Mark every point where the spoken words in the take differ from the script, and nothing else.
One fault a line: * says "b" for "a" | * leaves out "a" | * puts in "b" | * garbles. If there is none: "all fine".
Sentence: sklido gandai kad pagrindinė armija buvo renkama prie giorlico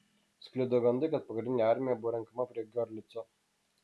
all fine